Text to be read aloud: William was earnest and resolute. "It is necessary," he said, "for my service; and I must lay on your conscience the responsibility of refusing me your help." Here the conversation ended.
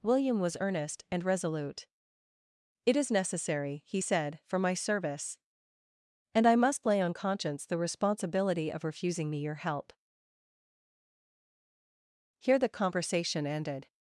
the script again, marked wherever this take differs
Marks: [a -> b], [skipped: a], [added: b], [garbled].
William was earnest and resolute. "It is necessary," he said, "for my service; and I must lay on [skipped: your] conscience the responsibility of refusing me your help." Here the conversation ended.